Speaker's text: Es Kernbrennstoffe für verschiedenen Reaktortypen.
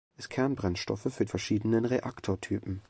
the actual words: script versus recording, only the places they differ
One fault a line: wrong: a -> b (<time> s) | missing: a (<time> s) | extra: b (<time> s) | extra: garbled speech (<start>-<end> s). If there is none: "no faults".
no faults